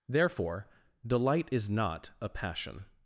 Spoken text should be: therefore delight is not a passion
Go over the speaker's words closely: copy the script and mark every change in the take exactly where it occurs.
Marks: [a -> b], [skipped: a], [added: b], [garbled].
therefore delight is not a passion